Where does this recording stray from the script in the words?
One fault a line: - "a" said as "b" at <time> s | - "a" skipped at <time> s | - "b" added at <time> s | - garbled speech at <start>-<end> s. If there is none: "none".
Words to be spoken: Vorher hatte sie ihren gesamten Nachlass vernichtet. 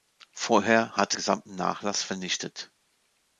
- "sie ihren" skipped at 1.2 s